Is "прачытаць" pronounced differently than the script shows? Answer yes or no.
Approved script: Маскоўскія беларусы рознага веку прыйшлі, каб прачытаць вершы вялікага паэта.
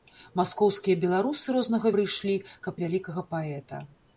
yes